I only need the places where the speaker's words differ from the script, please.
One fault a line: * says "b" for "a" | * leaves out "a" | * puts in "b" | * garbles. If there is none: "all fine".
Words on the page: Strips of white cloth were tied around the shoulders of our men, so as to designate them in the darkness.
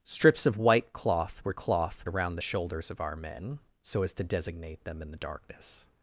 * says "cloth" for "tied"